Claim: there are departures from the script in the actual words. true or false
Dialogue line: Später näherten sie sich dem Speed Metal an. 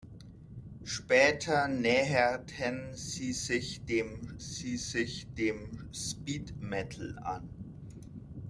true